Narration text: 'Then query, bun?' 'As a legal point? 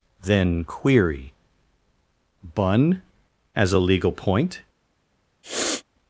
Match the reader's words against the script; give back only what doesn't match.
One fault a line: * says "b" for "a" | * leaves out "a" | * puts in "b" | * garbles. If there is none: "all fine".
all fine